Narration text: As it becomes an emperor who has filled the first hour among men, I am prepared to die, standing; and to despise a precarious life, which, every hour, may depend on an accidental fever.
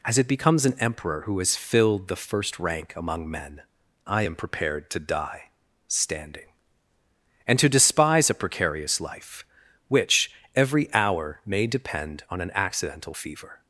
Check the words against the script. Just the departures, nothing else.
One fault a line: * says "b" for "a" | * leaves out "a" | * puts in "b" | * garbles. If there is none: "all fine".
* says "rank" for "hour"